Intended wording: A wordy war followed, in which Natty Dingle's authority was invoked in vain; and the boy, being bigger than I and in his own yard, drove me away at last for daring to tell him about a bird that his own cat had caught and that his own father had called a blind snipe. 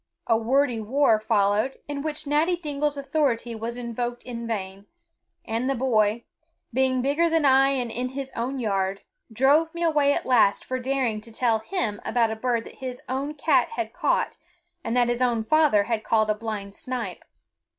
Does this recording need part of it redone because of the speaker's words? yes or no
no